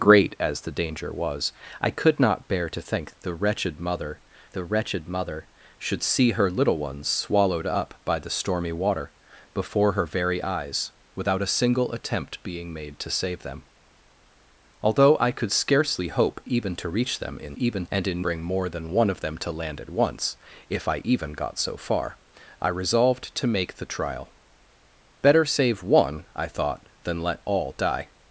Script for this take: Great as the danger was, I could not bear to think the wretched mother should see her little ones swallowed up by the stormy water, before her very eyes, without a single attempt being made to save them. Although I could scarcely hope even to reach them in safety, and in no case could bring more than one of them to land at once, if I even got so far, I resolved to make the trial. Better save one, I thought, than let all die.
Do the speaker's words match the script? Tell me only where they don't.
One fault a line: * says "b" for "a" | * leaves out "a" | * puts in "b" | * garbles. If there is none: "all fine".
* puts in "the wretched mother"
* says "even" for "safety"
* leaves out "no case could"